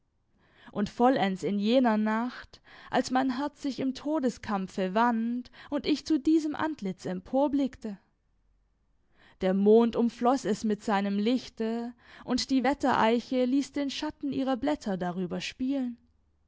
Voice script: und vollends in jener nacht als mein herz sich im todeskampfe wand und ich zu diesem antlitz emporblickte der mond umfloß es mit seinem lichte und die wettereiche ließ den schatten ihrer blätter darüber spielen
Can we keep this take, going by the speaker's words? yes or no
yes